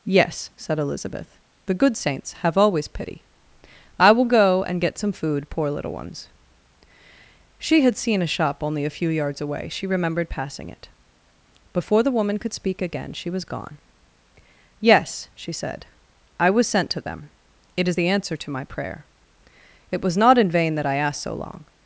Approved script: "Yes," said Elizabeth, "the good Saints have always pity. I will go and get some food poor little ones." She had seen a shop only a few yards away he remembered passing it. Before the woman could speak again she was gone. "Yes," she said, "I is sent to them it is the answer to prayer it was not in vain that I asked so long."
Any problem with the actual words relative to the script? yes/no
yes